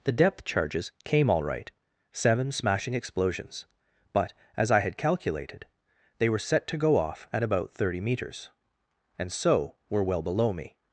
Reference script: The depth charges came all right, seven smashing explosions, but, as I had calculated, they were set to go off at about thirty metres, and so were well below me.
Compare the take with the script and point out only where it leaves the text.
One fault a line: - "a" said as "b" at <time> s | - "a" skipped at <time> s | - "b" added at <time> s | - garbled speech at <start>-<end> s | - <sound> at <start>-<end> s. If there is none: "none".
none